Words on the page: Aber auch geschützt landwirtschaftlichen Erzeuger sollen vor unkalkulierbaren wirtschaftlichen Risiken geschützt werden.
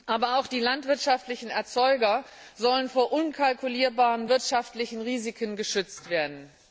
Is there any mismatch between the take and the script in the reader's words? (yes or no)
yes